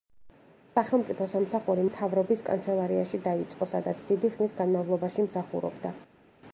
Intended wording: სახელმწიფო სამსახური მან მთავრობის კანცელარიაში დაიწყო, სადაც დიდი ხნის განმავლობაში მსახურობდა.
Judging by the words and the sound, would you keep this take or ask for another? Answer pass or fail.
fail